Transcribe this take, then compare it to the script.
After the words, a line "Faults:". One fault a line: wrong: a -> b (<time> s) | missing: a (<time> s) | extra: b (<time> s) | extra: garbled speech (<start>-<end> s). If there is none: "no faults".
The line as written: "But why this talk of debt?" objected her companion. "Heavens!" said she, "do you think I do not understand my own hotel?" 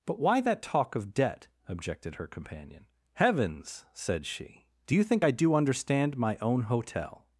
"But why that talk of debt?" objected her companion. "Heavens!" said she, "do you think I do understand my own hotel?"
Faults:
wrong: this -> that (0.4 s)
missing: not (5.5 s)